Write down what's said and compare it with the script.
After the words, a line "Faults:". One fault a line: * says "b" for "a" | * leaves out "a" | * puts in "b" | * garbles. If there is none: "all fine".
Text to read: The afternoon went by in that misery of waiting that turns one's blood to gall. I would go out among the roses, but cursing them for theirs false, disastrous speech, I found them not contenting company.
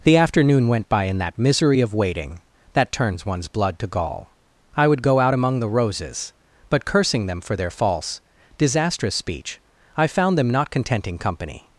The afternoon went by in that misery of waiting that turns one's blood to gall. I would go out among the roses, but cursing them for their false, disastrous speech, I found them not contenting company.
Faults:
* says "their" for "theirs"